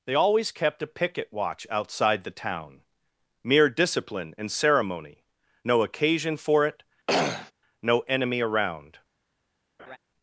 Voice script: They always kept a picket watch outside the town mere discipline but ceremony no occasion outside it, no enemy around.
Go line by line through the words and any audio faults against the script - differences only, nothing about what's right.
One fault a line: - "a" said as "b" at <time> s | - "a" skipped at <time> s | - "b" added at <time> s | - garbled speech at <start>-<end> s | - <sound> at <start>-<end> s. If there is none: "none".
- "but" said as "and" at 4.4 s
- "outside" said as "for" at 6.4 s
- throat clearing at 7.1-7.5 s
- laugh at 9.8-10.0 s